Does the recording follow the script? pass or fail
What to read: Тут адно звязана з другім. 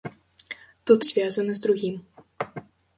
fail